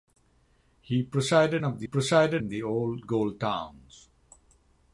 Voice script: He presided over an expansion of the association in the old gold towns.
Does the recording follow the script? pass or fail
fail